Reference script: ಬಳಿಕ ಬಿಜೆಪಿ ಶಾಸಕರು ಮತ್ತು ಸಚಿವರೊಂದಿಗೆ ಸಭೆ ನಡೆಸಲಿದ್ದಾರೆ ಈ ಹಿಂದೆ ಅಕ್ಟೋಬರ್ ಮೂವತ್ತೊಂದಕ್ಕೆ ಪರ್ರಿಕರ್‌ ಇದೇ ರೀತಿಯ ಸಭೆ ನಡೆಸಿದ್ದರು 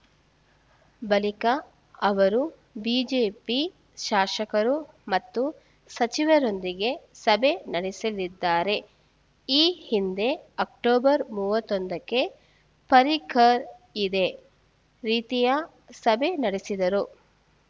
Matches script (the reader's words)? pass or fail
fail